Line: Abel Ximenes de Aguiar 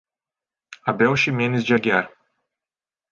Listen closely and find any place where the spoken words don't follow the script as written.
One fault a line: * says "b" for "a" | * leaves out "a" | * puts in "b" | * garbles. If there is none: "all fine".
all fine